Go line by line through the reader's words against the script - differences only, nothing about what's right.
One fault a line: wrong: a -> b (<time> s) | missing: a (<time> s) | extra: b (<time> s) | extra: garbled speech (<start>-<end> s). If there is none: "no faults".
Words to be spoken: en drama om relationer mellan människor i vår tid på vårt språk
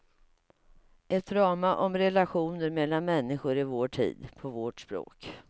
wrong: en -> ett (1.1 s)